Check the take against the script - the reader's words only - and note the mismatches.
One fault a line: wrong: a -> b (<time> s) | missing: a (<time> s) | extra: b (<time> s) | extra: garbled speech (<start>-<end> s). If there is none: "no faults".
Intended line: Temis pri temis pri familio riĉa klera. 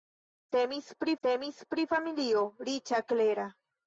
no faults